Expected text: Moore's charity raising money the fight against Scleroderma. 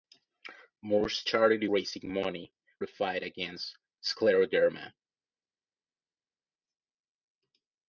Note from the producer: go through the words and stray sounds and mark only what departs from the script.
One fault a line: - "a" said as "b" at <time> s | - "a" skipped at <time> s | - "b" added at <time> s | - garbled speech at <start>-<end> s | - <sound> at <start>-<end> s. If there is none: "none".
none